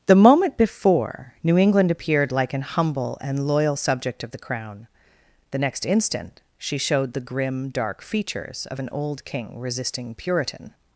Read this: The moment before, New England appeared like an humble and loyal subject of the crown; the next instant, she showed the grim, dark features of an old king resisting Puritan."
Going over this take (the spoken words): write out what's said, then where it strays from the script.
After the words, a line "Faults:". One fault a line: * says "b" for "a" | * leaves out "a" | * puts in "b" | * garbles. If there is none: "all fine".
The moment before, New England appeared like an humble and loyal subject of the crown; the next instant, she showed the grim, dark features of an old king resisting Puritan."
Faults:
all fine